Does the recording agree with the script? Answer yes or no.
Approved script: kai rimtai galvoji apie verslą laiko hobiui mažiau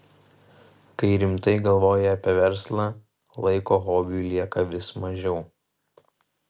no